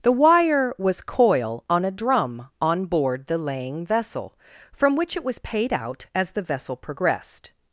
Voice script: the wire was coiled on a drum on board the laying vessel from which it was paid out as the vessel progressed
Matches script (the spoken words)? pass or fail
fail